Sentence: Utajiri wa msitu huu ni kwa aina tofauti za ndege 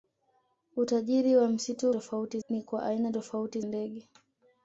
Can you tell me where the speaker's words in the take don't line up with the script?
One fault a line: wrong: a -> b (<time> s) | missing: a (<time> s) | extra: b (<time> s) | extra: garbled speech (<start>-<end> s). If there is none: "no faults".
wrong: huu -> tofauti (1.9 s)
missing: za (3.6 s)